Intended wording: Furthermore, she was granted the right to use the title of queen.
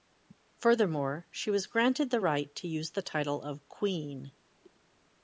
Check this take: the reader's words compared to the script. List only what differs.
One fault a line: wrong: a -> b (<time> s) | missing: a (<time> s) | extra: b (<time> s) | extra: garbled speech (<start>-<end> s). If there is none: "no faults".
no faults